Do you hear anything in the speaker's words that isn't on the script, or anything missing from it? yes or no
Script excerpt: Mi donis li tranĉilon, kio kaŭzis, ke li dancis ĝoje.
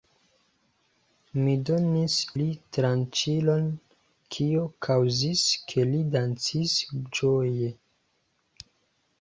no